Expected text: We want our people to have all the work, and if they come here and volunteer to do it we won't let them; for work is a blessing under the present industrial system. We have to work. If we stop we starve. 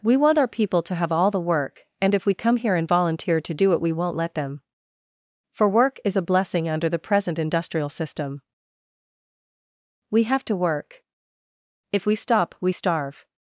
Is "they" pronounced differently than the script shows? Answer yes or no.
yes